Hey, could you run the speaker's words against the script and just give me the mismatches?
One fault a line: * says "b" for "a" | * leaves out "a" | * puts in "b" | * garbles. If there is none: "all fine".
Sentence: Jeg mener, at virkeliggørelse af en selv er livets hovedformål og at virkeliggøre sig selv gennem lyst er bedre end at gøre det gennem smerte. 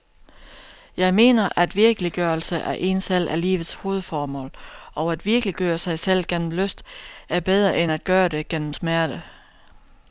all fine